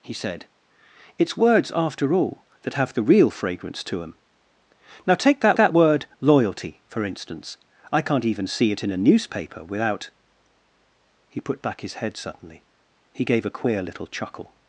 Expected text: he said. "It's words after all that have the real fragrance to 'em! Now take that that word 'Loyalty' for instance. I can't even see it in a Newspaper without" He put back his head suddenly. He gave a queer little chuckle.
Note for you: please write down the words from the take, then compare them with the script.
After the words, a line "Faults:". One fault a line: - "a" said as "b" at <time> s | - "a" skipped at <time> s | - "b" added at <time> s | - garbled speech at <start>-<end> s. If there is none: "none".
he said. "It's words after all that have the real fragrance to 'em! Now take that that word 'Loyalty' for instance. I can't even see it in a Newspaper without" He put back his head suddenly. He gave a queer little chuckle.
Faults:
none